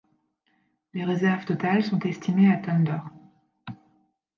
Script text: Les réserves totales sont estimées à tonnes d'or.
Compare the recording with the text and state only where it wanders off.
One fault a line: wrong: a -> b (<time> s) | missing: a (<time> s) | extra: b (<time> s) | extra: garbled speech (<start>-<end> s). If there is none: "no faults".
no faults